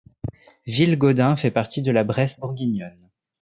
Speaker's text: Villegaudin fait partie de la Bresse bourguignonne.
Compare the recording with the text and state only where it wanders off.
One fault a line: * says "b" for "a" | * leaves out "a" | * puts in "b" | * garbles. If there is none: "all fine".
all fine